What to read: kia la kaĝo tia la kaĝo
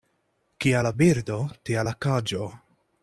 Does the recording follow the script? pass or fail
fail